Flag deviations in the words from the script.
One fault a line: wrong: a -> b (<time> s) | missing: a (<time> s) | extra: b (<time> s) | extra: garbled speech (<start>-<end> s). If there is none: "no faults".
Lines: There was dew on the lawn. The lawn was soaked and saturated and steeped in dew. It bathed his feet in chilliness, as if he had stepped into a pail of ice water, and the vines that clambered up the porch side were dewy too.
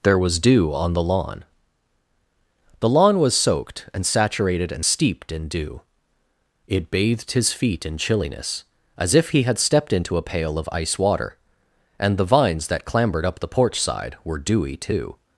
no faults